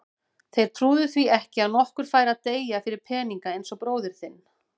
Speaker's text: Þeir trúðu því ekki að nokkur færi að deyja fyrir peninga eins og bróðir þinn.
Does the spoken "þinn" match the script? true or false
true